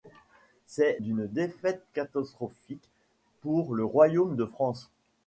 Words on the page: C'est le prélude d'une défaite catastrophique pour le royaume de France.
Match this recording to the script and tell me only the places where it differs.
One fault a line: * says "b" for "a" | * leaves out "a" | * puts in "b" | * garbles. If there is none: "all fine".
* leaves out "le prélude"